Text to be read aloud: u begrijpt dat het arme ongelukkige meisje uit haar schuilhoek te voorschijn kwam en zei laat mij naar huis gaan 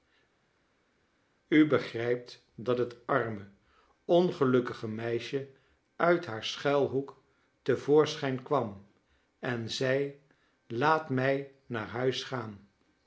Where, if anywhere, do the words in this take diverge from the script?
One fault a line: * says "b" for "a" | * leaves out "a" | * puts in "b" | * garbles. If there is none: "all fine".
all fine